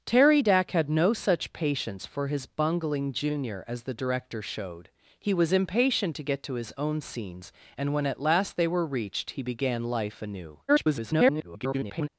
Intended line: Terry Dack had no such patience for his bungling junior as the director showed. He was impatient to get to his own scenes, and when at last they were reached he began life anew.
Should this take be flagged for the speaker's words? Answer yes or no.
yes